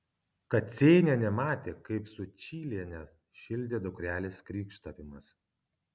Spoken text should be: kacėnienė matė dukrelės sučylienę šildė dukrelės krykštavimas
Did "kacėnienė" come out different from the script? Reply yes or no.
no